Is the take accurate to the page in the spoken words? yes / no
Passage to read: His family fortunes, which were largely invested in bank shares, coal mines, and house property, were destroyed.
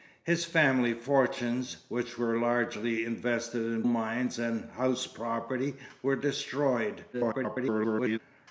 no